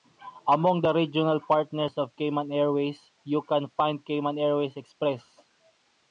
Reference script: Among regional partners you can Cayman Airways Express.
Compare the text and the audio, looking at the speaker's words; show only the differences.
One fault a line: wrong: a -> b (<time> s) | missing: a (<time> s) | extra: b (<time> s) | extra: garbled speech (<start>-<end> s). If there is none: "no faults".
extra: the (0.8 s)
extra: of Cayman Airways (1.9 s)
extra: find (3.7 s)